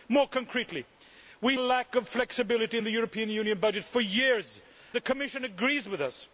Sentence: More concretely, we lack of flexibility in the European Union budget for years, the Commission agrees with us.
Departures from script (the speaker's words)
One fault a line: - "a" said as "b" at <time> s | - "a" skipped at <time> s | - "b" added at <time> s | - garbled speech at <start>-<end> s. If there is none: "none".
none